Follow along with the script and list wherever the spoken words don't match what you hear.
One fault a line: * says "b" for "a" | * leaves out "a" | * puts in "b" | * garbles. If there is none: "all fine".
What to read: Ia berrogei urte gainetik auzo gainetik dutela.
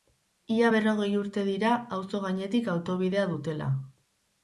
* says "dira" for "gainetik"
* puts in "autobidea"